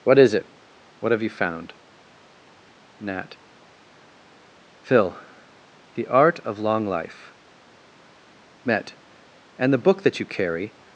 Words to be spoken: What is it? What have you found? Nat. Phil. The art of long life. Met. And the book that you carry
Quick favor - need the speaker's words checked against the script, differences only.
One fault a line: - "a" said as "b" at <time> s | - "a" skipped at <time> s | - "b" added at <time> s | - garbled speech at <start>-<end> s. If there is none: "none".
none